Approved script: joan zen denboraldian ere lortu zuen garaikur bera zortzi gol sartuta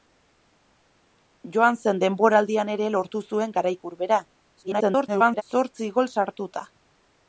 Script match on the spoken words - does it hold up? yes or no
no